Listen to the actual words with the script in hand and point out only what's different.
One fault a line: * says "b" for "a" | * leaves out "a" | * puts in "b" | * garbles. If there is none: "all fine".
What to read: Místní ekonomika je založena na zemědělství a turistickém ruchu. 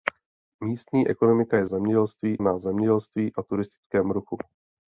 * says "zemědělství" for "založena"